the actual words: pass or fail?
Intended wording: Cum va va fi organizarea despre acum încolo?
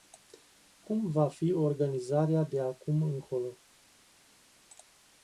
fail